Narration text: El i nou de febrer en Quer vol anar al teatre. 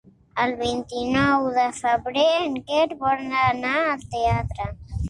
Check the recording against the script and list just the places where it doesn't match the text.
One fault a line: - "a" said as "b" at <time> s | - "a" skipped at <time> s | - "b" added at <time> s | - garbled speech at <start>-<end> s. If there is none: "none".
- "vint" added at 0.6 s